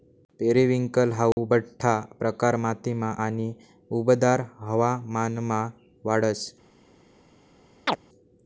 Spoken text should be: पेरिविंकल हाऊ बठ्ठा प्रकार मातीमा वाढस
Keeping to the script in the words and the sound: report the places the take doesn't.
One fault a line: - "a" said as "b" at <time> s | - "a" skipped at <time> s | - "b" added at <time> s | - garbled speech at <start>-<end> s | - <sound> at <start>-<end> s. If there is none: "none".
- dropout at 1.3-1.4 s
- "आणि उबदार हवामानमा" added at 3.2 s
- chirp at 7.9-8.0 s